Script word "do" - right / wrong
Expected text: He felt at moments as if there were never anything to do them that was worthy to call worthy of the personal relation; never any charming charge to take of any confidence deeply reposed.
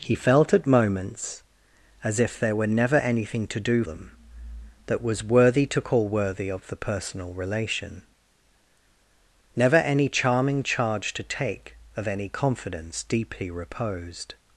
right